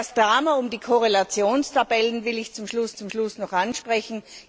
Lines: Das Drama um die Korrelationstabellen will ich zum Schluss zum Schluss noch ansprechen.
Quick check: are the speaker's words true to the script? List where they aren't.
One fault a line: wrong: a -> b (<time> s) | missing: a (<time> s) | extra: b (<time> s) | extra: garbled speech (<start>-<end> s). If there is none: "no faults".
no faults